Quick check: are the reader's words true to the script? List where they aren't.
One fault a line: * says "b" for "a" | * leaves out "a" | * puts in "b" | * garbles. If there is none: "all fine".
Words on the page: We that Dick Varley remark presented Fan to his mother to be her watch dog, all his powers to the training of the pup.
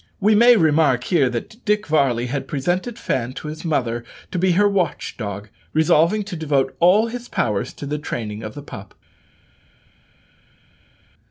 * puts in "may remark here"
* says "had" for "remark"
* puts in "resolving to devote"